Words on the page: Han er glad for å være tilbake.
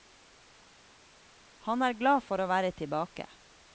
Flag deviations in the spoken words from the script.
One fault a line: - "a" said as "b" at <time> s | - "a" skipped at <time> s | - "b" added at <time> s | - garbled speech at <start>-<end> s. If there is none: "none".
none